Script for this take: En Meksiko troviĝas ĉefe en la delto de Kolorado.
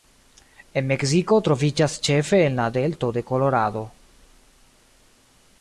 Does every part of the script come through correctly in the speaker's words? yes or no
yes